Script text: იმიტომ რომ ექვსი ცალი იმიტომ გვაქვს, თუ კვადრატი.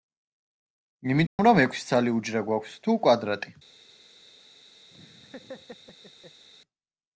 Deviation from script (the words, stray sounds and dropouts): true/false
true